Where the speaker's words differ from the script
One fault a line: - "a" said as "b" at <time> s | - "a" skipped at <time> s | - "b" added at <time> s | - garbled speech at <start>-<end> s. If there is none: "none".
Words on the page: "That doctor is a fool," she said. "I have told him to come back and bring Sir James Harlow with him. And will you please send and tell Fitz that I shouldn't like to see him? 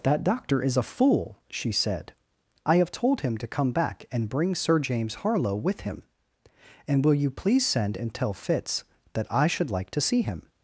- "shouldn't" said as "should" at 9.5 s